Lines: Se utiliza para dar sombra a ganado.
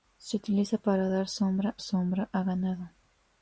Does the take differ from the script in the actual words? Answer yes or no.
yes